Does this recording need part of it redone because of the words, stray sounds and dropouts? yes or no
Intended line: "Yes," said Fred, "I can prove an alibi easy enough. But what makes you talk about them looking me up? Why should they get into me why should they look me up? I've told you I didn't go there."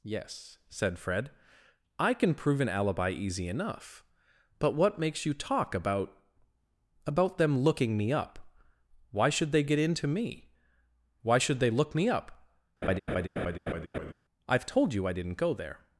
yes